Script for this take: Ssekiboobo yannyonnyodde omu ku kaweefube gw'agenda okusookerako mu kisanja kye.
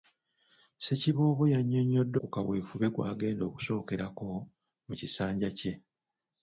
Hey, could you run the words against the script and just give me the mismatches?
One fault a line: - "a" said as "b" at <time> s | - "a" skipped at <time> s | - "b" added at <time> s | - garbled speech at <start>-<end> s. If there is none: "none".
- "omu" skipped at 2.2 s